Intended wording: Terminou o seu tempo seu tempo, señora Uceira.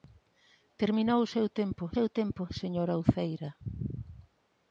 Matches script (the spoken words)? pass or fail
pass